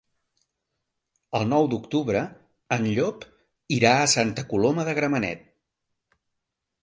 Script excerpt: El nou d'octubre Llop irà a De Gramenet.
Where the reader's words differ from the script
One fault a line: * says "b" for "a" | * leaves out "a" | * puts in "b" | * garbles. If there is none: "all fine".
* puts in "en"
* puts in "Santa Coloma"